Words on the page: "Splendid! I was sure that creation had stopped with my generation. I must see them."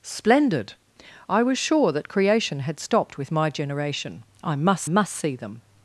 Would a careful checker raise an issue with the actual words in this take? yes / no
yes